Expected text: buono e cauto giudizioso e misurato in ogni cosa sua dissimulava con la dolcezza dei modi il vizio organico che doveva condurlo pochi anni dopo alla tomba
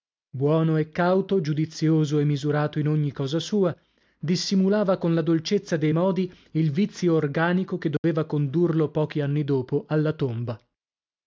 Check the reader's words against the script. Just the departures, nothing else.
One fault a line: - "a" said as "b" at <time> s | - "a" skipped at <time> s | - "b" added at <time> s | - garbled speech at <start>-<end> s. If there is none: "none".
none